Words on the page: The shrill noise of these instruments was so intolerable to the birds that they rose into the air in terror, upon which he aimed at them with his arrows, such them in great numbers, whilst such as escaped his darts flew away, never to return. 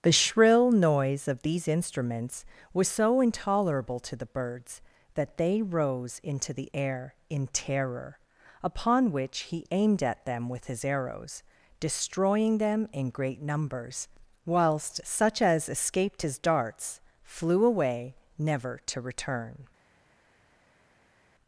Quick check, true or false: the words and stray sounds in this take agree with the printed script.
false